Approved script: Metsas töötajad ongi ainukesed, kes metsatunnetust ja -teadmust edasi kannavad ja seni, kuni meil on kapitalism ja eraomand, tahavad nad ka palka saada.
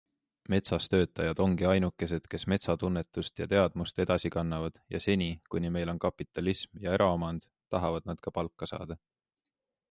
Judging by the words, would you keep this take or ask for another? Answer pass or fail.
pass